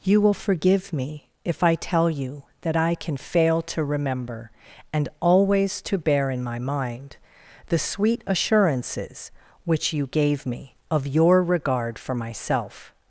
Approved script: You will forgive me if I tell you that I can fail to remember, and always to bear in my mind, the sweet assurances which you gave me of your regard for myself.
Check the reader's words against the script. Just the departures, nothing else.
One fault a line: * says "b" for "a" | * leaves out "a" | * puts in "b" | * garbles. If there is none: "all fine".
all fine